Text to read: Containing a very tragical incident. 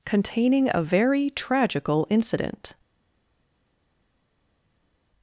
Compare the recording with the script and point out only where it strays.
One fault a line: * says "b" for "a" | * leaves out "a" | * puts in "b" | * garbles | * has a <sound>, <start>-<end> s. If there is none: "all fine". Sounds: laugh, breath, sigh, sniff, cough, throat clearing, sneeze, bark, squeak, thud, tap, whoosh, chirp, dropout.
all fine